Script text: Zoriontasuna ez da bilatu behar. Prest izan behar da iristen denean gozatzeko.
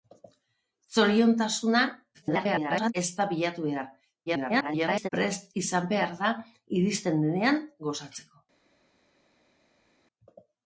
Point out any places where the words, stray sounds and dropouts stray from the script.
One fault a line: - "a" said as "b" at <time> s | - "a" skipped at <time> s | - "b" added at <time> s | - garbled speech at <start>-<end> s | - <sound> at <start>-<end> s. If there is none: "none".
- garbled speech at 2.1-2.9 s
- garbled speech at 4.3-5.1 s